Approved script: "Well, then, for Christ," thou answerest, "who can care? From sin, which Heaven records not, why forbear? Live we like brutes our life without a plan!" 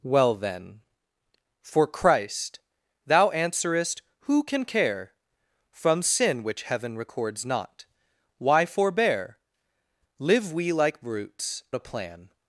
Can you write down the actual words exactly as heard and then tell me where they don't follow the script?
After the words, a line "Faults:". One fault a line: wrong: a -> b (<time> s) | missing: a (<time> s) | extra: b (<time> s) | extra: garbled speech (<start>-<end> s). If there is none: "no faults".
"Well, then, for Christ," thou answerest, "who can care? From sin, which Heaven records not, why forbear? Live we like brutes a plan!"
Faults:
missing: our life without (11.6 s)